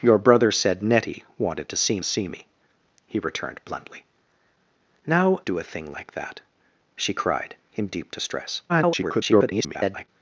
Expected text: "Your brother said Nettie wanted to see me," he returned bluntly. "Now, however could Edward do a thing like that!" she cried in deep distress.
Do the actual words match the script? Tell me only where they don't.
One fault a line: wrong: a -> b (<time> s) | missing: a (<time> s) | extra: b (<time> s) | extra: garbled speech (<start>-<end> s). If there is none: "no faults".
extra: see (2.0 s)
missing: however could Edward (5.4 s)
extra: garbled speech (8.7-10.1 s)